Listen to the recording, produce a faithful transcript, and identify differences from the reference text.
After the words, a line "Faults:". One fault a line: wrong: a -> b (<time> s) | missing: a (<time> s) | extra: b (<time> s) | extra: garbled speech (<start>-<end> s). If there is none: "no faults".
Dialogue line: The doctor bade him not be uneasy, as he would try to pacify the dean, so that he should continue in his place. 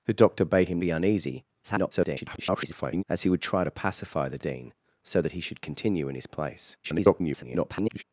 The doctor bade him be uneasy, [garbled] as he would try to pacify the dean, so that he should continue in his place. [garbled]
Faults:
missing: not (0.8 s)
extra: garbled speech (1.6-3.0 s)
extra: garbled speech (6.8-8.0 s)